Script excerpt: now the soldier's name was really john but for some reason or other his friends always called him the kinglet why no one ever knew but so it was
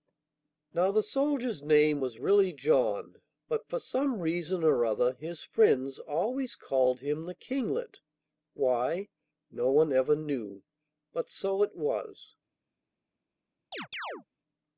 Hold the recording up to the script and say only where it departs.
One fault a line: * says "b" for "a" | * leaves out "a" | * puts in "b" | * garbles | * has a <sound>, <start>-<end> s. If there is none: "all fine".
* has a chirp, 13.7-14.2 s